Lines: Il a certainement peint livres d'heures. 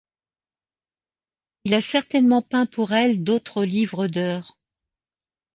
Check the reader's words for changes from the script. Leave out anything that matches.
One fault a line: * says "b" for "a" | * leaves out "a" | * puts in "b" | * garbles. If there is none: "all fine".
* puts in "pour elle d'autres"